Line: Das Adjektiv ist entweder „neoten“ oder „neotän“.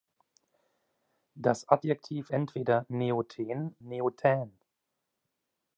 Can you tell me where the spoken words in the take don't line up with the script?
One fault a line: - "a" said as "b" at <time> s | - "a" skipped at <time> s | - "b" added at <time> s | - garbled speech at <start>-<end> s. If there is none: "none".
- "ist" skipped at 2.3 s
- "oder" skipped at 3.7 s